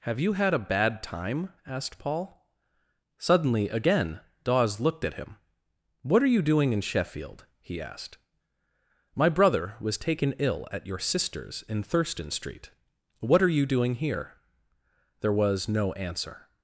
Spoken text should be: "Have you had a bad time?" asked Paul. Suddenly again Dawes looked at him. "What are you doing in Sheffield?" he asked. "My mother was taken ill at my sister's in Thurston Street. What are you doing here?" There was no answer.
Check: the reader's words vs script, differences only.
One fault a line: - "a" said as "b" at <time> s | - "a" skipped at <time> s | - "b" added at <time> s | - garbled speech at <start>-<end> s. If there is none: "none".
- "mother" said as "brother" at 9.3 s
- "my" said as "your" at 10.9 s